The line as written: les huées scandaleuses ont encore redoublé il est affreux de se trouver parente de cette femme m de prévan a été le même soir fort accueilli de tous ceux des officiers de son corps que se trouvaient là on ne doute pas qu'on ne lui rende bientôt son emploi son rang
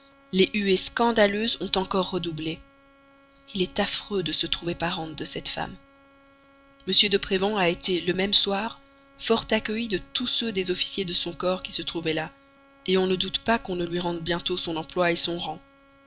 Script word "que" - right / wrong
wrong